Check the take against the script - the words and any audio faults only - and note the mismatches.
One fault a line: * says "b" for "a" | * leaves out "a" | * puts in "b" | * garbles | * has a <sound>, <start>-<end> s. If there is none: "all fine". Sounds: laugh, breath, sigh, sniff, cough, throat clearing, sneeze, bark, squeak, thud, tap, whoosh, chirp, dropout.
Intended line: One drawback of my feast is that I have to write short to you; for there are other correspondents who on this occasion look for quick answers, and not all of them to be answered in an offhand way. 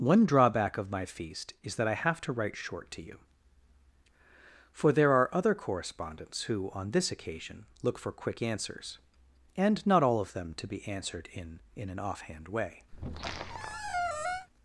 * puts in "in"
* has a squeak, 12.9-14.5 s